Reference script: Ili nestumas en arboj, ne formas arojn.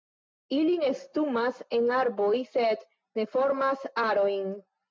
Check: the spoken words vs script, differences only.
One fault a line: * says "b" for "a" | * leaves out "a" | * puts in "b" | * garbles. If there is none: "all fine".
* puts in "sed"